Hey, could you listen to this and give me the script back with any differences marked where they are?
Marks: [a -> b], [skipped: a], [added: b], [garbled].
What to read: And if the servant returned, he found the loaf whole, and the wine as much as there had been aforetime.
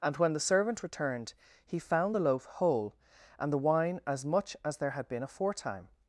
And [if -> when] the servant returned, he found the loaf whole, and the wine as much as there had been aforetime.